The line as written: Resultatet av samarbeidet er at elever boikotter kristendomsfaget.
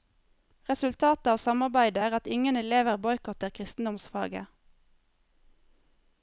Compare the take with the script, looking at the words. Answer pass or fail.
fail